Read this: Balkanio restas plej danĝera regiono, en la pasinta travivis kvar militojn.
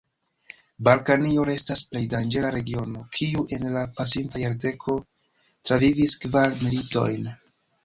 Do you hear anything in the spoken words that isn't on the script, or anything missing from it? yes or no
yes